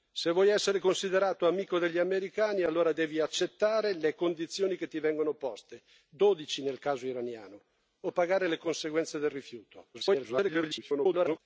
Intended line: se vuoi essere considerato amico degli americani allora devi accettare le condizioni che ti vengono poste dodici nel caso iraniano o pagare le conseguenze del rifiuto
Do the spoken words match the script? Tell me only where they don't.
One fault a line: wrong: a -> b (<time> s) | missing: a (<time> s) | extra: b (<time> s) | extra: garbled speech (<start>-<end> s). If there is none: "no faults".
extra: garbled speech (9.9-11.4 s)